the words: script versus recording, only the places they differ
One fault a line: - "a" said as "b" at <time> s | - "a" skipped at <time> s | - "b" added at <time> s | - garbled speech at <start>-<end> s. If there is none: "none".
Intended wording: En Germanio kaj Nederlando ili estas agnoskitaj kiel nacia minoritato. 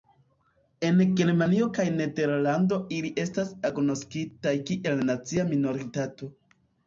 none